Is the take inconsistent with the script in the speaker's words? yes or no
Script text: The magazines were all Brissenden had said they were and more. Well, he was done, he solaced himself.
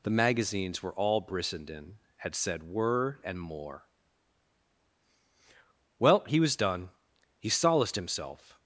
yes